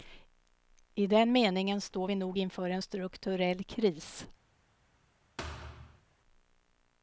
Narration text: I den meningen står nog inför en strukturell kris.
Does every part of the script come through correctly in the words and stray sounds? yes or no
no